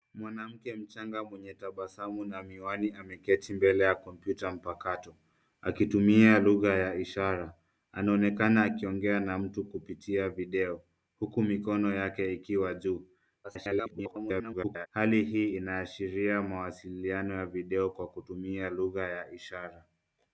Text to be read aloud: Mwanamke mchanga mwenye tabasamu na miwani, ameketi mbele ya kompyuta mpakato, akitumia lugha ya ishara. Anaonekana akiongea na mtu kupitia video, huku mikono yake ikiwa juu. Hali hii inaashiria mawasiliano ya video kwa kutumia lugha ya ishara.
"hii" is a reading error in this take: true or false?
false